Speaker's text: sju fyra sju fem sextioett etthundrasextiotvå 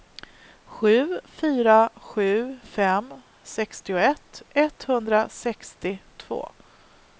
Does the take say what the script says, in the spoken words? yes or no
yes